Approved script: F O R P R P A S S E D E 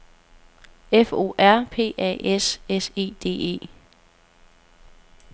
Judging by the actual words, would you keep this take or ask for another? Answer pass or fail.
fail